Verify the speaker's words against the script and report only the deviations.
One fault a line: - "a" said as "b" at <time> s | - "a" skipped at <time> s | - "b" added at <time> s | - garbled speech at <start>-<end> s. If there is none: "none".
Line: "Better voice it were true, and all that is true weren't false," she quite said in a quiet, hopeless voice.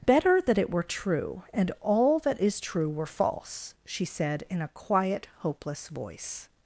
- "voice" said as "that" at 0.4 s
- "weren't" said as "were" at 2.9 s
- "quite" skipped at 4.0 s